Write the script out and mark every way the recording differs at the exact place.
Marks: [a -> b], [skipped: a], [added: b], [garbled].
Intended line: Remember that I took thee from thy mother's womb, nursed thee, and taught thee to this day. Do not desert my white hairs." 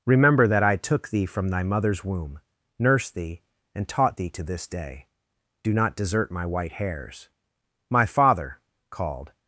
Remember that I took thee from thy mother's womb, nursed thee, and taught thee to this day. Do not desert my white hairs." [added: My father called]